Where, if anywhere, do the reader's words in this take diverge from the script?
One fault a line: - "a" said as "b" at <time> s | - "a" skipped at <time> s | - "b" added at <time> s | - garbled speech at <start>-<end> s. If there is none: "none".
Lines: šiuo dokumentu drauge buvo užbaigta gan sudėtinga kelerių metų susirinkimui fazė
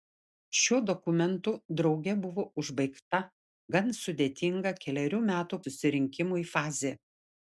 none